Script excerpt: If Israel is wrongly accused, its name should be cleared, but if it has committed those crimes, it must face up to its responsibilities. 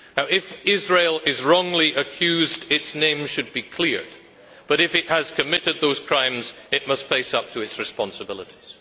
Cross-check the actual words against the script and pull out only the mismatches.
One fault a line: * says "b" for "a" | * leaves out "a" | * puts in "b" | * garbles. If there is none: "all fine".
all fine